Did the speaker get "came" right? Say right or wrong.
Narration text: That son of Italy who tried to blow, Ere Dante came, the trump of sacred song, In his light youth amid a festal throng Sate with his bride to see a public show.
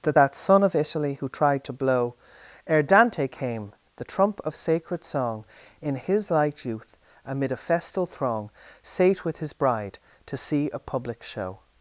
right